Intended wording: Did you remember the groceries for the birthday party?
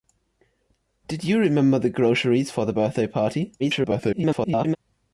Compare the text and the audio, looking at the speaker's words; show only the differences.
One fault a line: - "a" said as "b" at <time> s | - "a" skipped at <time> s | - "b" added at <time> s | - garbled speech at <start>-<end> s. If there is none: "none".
- garbled speech at 3.6-4.8 s